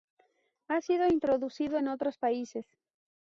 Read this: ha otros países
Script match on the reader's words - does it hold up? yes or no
no